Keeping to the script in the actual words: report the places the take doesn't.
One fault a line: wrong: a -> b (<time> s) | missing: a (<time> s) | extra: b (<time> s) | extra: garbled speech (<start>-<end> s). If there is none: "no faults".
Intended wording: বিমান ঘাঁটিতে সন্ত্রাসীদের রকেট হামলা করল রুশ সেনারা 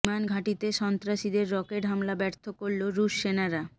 extra: ব্যর্থ (2.1 s)